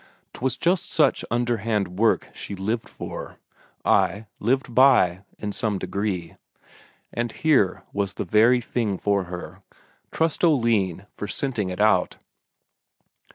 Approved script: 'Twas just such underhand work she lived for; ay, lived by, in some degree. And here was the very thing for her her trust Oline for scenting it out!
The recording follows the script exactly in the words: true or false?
false